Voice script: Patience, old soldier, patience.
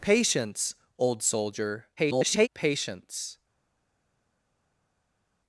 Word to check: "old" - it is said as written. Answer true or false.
true